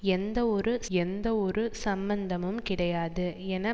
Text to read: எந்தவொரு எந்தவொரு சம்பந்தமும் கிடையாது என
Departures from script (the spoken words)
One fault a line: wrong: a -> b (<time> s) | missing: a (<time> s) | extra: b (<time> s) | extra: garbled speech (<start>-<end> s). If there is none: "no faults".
no faults